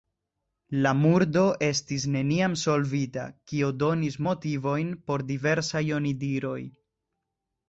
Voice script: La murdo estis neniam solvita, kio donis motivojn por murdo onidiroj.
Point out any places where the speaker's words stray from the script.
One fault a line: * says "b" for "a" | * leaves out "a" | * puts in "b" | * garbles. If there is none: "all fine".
* says "diversaj" for "murdo"